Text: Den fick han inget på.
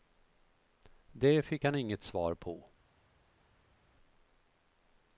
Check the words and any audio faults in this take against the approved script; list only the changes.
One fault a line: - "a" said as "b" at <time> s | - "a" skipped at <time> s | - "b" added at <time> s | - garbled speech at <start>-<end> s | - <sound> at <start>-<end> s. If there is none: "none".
- "Den" said as "Det" at 1.1 s
- "svar" added at 2.0 s